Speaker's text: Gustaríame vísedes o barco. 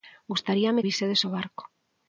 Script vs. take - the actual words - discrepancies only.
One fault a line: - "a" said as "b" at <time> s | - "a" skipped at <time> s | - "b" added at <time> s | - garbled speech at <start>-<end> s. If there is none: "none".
none